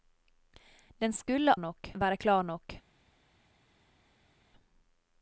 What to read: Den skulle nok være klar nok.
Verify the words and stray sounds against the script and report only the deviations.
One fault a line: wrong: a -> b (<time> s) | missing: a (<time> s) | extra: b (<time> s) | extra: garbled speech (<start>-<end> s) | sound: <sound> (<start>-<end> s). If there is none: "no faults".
no faults